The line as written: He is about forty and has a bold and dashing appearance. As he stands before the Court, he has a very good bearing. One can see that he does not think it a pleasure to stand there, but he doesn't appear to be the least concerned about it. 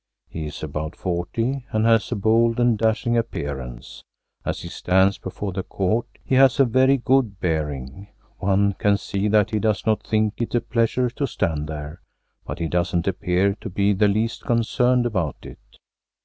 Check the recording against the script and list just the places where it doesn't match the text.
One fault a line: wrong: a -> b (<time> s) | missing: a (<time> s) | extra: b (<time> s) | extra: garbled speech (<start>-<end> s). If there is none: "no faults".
no faults